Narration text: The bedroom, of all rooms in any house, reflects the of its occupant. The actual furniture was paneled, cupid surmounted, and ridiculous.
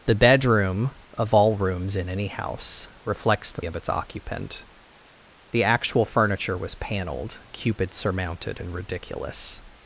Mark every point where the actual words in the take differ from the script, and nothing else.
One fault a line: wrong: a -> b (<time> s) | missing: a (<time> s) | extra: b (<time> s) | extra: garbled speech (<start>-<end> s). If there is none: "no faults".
no faults